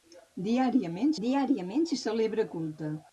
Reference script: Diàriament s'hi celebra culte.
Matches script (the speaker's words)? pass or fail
fail